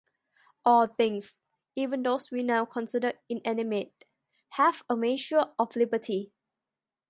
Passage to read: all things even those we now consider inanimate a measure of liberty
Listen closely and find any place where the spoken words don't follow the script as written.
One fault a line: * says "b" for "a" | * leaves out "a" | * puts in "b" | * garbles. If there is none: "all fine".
* puts in "have"